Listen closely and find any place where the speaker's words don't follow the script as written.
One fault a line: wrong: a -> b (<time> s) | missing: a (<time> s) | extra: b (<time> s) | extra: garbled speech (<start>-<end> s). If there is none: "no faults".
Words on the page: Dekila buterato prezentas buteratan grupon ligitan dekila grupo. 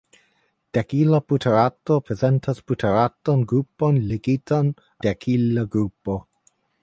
no faults